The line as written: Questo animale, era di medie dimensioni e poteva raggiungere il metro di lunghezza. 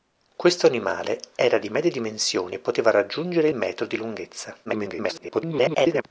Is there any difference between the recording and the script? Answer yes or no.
yes